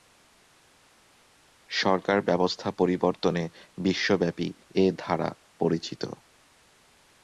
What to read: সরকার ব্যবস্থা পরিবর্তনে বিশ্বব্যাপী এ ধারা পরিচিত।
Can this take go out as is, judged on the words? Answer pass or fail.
pass